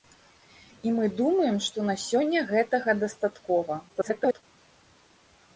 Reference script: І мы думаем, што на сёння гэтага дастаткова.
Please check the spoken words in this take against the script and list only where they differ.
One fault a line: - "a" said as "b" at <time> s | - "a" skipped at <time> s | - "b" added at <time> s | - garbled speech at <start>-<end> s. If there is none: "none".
- garbled speech at 3.9-4.4 s